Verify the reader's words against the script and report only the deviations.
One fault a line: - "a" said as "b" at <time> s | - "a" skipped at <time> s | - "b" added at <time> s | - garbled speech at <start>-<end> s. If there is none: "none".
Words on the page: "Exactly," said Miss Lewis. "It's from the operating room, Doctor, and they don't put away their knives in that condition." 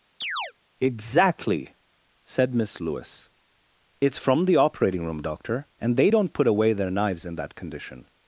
none